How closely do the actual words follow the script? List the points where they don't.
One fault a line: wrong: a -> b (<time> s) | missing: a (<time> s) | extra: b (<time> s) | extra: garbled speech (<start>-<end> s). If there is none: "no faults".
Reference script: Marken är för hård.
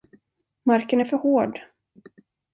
no faults